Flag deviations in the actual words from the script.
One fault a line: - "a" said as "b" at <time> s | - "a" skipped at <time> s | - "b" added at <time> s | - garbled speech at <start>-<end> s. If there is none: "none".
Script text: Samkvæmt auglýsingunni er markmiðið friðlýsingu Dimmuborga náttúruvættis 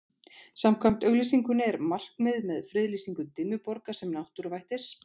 - "með" added at 2.5 s
- "sem" added at 4.0 s